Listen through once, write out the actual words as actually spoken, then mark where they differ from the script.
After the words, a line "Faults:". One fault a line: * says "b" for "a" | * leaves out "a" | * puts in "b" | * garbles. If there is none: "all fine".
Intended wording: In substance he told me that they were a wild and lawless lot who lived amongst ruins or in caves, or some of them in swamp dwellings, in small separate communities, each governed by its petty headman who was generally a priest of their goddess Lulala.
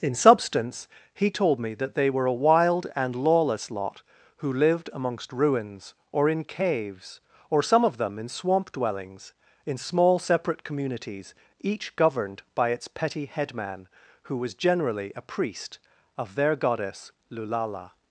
In substance he told me that they were a wild and lawless lot who lived amongst ruins or in caves, or some of them in swamp dwellings, in small separate communities, each governed by its petty headman who was generally a priest of their goddess Lulala.
Faults:
all fine